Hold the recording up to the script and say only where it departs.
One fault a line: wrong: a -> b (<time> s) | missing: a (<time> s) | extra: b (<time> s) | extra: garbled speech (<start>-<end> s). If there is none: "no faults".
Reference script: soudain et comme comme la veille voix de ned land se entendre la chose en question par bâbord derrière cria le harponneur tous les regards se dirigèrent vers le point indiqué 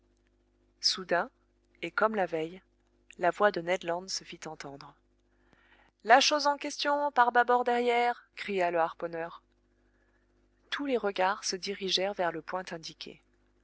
missing: comme (2.1 s)
extra: la (3.2 s)
extra: fit (4.2 s)